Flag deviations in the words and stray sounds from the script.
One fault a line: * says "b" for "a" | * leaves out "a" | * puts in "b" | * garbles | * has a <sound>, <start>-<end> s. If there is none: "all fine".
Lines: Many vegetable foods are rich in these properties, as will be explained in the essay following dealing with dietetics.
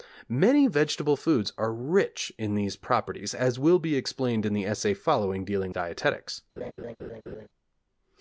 * leaves out "with"
* has a laugh, 6.6-7.5 s